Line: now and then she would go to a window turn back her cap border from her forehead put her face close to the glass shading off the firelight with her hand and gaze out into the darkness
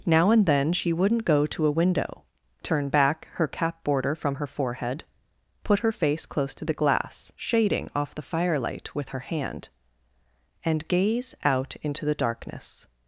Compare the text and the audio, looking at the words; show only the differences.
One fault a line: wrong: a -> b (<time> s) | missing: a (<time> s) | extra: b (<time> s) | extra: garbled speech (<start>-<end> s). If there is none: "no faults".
wrong: would -> wouldn't (0.9 s)